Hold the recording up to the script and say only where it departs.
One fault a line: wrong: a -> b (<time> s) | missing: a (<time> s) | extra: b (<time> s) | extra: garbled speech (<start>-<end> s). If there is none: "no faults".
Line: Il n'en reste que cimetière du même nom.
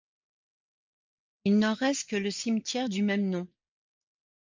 extra: le (2.1 s)